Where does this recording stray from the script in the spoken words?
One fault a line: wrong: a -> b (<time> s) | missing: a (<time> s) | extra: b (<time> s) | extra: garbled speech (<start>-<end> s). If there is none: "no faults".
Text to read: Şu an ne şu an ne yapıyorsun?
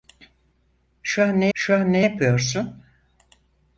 no faults